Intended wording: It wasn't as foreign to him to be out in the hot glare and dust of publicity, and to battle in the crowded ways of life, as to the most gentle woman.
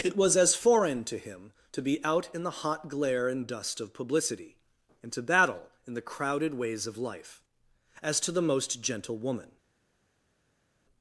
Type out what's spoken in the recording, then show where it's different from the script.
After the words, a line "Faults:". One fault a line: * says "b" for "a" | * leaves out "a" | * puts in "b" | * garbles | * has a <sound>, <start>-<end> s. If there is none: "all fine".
It was as foreign to him to be out in the hot glare and dust of publicity, and to battle in the crowded ways of life, as to the most gentle woman.
Faults:
* says "was" for "wasn't"